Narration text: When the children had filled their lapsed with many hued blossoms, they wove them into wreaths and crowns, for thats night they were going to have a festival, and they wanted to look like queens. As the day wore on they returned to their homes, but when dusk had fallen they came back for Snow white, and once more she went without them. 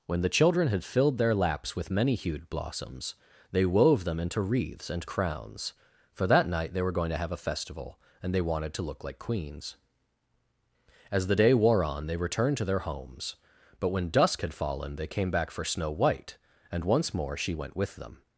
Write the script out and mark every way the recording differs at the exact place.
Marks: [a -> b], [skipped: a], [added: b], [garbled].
When the children had filled their [lapsed -> laps] with many hued blossoms, they wove them into wreaths and crowns, for [thats -> that] night they were going to have a festival, and they wanted to look like queens. As the day wore on they returned to their homes, but when dusk had fallen they came back for Snow white, and once more she went [without -> with] them.